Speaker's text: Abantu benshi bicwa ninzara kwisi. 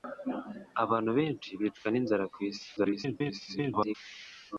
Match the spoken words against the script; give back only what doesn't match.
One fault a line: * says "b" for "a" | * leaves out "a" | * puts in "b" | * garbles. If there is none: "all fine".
* garbles